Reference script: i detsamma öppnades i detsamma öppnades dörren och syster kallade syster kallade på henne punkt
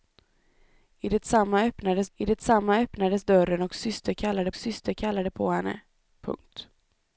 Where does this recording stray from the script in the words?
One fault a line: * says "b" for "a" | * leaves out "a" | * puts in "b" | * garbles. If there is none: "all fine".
all fine